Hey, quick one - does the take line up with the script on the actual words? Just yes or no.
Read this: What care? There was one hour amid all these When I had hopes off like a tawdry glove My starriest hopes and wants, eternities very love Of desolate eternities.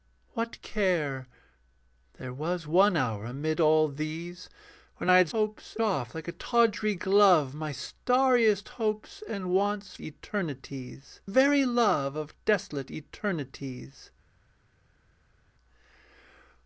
yes